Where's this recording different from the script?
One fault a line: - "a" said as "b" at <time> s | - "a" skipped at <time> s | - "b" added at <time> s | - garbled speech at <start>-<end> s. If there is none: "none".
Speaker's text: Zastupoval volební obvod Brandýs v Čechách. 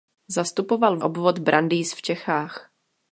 - "volební" skipped at 1.0 s